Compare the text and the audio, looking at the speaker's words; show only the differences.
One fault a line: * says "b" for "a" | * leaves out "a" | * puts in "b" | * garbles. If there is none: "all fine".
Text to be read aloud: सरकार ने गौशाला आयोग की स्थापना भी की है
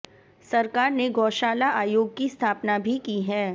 all fine